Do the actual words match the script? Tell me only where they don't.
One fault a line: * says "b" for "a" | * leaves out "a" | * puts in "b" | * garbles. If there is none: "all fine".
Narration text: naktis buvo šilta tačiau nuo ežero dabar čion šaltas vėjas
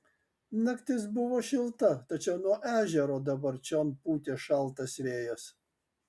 * puts in "pūtė"